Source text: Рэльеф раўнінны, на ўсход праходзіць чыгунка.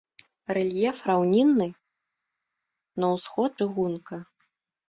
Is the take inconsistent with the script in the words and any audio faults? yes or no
yes